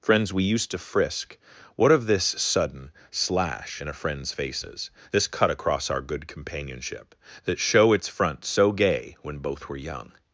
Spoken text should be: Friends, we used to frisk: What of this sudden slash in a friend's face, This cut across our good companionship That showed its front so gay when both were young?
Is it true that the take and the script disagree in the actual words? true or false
true